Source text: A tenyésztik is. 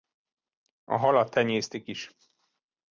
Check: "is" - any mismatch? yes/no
no